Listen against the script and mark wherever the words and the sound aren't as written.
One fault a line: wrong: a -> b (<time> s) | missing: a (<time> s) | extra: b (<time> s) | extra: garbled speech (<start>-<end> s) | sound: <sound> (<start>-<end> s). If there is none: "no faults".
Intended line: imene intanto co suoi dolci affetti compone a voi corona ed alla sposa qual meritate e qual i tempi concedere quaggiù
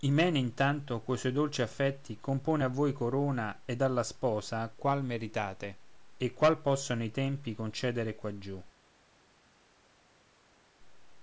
extra: possono (6.6 s)